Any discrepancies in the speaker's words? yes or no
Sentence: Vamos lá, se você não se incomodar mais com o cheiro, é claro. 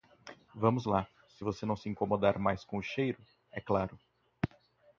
no